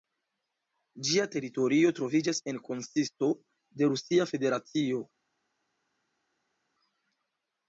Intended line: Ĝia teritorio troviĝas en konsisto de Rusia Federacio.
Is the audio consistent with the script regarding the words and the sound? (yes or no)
yes